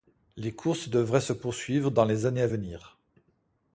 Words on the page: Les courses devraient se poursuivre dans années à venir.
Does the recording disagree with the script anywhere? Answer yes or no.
yes